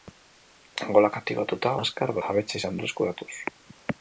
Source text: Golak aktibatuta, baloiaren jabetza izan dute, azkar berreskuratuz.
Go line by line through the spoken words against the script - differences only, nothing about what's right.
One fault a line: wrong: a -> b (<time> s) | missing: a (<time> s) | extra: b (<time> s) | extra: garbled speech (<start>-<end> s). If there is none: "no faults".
wrong: baloiaren -> azkar (1.9 s)
missing: dute azkar (2.8 s)